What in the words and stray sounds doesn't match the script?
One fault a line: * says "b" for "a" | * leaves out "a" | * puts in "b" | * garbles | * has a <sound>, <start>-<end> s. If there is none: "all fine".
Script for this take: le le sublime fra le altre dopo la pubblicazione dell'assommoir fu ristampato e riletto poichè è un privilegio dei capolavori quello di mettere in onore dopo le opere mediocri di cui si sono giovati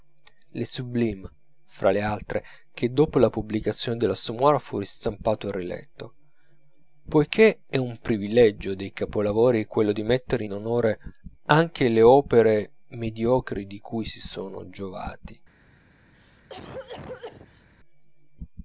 * leaves out "le"
* puts in "che"
* says "anche" for "dopo"
* has a cough, 16.1-17.7 s